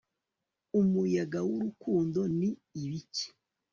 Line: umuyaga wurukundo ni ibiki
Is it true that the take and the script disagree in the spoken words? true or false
false